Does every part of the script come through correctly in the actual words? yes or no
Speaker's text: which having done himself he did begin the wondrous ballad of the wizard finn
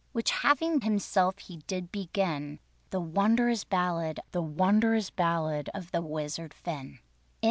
no